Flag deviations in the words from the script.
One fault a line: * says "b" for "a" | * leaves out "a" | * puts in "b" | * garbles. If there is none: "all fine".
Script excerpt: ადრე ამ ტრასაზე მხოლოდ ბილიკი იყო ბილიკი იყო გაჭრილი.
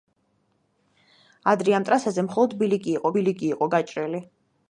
all fine